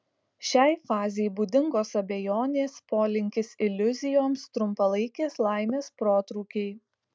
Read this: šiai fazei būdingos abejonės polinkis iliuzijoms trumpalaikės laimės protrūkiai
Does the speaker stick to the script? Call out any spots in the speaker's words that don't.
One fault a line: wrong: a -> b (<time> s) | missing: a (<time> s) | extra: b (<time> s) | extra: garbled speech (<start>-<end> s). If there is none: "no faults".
no faults